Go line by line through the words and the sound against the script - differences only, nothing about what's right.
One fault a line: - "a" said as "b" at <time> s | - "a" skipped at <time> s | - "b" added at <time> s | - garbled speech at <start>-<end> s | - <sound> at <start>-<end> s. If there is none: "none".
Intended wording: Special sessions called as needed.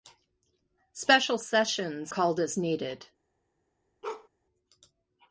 - bark at 4.0-4.3 s